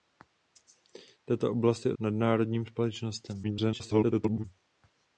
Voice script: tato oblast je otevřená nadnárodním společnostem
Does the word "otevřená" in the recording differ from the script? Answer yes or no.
yes